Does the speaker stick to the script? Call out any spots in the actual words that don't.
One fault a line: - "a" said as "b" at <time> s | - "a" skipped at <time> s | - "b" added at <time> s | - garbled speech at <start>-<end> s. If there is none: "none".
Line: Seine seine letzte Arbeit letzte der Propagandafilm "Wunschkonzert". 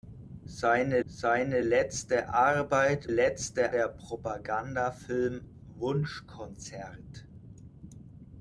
none